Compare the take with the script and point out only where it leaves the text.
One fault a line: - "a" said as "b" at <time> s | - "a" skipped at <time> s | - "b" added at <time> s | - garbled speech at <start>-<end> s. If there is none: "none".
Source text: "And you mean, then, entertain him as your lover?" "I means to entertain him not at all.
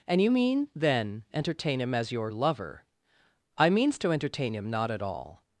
none